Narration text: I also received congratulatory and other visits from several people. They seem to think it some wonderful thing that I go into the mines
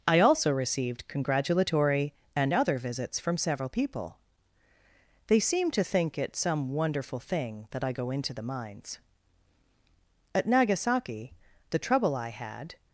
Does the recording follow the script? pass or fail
fail